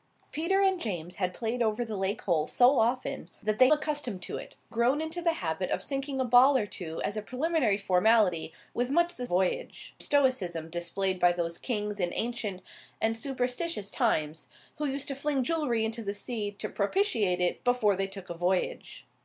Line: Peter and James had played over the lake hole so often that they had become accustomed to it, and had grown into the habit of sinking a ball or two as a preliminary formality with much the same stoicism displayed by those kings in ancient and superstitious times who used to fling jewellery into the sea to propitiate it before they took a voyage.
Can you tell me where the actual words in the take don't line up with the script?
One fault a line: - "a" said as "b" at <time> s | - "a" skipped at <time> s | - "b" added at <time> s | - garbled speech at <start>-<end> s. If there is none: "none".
- "had become" skipped at 3.7 s
- "and had" skipped at 4.5 s
- "same" said as "voyage" at 9.2 s